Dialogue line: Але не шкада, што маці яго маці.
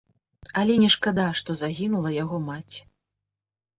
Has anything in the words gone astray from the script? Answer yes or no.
yes